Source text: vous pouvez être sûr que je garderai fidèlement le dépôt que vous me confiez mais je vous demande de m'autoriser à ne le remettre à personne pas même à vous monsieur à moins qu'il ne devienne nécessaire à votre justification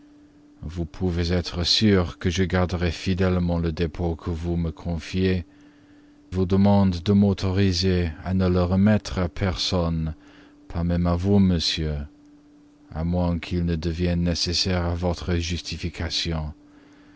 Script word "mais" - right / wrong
wrong